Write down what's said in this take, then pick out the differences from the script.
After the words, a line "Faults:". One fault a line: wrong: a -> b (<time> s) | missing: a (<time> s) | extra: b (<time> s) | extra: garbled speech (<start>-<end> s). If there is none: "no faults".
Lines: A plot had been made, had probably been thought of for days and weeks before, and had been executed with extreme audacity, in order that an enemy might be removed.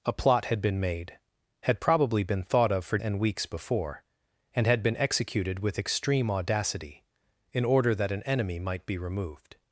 A plot had been made, had probably been thought of for and weeks before, and had been executed with extreme audacity, in order that an enemy might be removed.
Faults:
missing: days (3.0 s)